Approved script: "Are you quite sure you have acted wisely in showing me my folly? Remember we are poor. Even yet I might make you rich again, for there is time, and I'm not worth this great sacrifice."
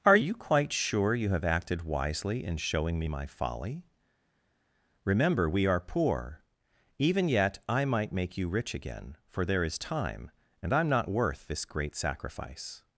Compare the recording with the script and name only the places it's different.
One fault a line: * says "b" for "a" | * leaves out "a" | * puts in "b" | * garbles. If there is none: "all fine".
all fine